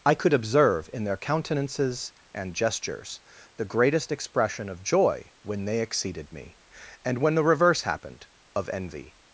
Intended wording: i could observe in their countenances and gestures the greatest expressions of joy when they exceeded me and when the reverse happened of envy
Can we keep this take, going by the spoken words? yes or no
no